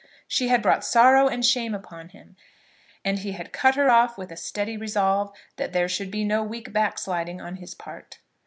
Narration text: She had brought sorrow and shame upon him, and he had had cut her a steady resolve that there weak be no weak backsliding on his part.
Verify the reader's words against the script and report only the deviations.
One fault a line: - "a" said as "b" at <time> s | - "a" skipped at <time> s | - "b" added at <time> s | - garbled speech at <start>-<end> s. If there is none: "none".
- "had" skipped at 3.5 s
- "off with" added at 3.9 s
- "weak" said as "should" at 5.9 s